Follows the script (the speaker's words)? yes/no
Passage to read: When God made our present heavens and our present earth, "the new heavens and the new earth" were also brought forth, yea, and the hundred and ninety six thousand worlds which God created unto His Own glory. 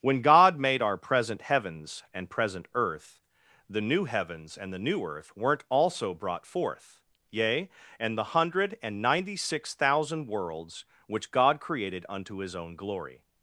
no